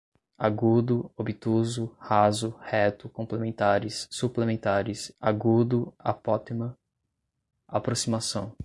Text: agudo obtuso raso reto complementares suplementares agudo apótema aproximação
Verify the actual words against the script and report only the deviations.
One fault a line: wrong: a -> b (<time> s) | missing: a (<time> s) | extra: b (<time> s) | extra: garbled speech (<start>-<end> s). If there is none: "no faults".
no faults